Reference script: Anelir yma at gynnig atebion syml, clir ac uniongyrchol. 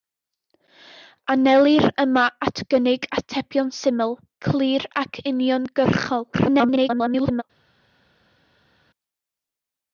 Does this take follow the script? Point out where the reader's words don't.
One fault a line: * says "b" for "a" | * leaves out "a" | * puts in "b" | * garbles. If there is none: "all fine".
* garbles